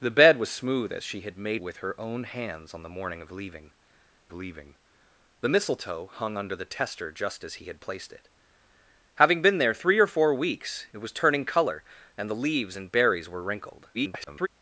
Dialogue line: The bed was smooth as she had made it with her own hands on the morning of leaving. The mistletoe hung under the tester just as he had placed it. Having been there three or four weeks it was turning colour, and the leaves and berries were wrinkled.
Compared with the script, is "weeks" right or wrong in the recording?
right